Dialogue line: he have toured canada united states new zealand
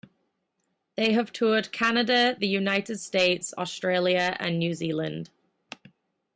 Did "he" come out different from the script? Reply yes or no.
yes